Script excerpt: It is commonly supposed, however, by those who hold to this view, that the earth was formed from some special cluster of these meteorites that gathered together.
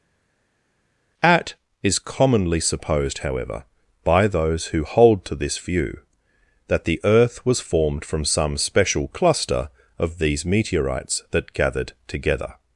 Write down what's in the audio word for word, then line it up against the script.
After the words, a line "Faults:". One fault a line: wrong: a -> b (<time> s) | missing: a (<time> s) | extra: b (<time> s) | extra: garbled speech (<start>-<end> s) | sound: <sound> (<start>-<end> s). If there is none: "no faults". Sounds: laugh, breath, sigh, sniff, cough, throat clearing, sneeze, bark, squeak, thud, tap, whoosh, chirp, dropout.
At is commonly supposed, however, by those who hold to this view, that the earth was formed from some special cluster of these meteorites that gathered together.
Faults:
wrong: It -> At (1.2 s)